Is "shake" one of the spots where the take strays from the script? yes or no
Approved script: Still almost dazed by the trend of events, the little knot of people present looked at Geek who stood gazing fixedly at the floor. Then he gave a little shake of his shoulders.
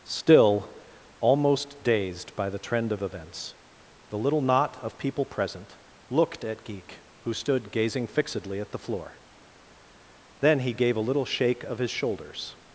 no